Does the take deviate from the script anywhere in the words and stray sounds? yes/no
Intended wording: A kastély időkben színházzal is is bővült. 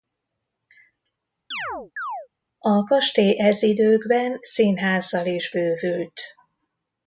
yes